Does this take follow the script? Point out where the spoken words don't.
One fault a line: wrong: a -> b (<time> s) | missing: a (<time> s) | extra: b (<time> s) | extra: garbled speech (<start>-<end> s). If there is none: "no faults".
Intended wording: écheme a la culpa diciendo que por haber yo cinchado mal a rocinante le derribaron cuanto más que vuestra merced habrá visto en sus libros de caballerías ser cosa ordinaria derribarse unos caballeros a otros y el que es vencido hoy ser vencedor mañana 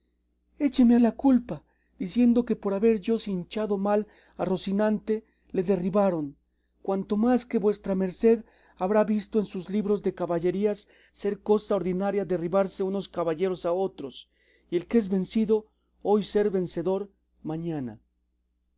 no faults